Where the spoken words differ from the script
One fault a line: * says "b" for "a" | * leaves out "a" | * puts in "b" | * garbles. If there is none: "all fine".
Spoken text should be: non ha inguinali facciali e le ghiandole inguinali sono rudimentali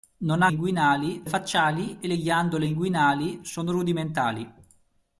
all fine